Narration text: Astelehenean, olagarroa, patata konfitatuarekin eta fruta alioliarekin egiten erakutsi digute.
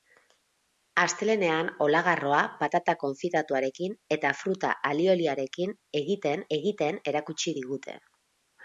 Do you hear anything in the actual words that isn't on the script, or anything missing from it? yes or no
yes